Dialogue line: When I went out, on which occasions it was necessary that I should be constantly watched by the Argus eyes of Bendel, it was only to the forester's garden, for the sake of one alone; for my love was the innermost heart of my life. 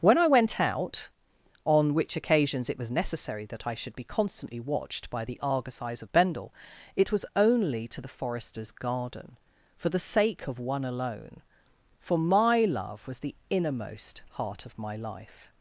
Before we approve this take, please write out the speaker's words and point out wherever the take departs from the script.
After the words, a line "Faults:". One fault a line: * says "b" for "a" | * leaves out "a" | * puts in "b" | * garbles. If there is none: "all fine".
When I went out, on which occasions it was necessary that I should be constantly watched by the Argus eyes of Bendel, it was only to the forester's garden, for the sake of one alone; for my love was the innermost heart of my life.
Faults:
all fine